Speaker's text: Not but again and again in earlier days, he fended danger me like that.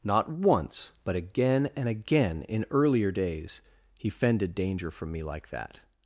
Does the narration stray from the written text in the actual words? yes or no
yes